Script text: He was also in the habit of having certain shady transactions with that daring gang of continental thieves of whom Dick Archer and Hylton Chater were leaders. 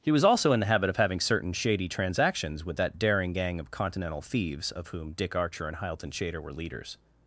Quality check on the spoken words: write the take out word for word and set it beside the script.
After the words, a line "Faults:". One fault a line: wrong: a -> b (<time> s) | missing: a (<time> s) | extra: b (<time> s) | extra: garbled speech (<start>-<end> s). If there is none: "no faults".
He was also in the habit of having certain shady transactions with that daring gang of continental thieves of whom Dick Archer and Hylton Chater were leaders.
Faults:
no faults